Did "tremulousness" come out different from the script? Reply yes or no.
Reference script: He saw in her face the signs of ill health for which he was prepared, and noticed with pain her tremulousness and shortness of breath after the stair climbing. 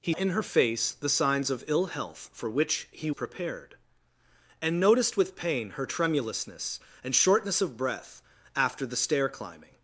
no